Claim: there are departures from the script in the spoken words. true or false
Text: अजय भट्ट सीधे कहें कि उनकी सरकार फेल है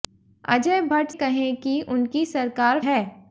true